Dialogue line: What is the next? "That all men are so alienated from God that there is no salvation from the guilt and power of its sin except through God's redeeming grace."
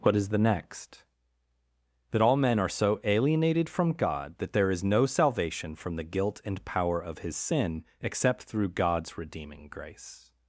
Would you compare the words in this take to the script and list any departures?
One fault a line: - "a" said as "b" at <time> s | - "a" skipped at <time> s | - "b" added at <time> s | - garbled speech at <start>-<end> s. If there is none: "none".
- "its" said as "his" at 7.2 s